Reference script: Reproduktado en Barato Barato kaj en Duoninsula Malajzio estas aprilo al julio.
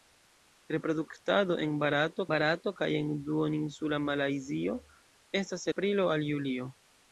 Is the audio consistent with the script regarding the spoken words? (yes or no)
yes